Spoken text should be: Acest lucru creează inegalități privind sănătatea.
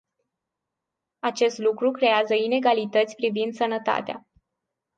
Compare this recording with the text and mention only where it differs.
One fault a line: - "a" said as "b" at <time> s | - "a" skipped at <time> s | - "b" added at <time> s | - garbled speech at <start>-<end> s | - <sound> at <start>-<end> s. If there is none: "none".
none